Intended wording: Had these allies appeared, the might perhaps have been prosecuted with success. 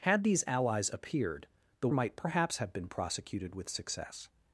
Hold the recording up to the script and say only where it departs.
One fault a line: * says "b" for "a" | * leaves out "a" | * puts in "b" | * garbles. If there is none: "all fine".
all fine